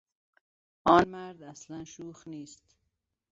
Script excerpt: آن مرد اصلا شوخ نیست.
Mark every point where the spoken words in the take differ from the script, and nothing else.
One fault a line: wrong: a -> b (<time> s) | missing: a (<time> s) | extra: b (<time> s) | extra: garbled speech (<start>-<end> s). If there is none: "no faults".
no faults